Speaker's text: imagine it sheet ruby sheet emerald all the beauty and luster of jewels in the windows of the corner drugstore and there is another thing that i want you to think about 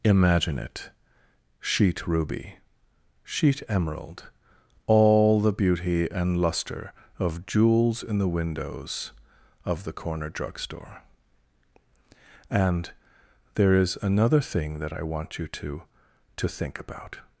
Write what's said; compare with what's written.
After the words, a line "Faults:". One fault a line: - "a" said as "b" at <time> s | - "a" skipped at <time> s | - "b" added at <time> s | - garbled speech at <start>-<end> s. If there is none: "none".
imagine it sheet ruby sheet emerald all the beauty and luster of jewels in the windows of the corner drugstore and there is another thing that i want you to to think about
Faults:
- "to" added at 16.4 s